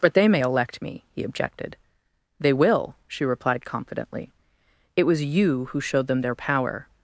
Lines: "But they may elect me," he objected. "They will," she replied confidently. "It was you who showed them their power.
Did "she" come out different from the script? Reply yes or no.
no